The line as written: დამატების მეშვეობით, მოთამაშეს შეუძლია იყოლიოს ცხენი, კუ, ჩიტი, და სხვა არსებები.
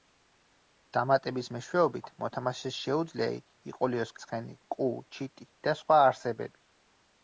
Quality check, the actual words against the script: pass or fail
pass